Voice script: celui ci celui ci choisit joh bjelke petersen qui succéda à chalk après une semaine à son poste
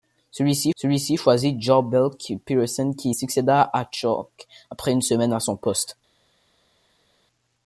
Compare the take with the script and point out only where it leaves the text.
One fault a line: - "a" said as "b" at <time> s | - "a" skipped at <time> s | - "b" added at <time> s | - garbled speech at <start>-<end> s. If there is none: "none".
none